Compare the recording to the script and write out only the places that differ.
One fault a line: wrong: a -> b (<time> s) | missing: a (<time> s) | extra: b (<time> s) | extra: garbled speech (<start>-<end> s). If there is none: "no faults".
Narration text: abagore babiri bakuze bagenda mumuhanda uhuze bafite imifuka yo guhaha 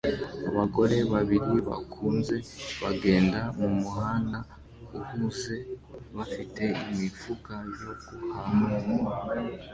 no faults